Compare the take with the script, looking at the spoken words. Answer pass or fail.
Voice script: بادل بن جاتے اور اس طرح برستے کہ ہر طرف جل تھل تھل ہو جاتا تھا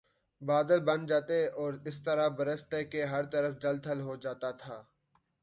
fail